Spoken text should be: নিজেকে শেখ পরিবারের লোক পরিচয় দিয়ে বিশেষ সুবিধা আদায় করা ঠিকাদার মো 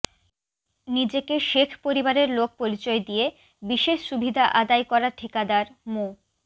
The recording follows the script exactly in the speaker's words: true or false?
true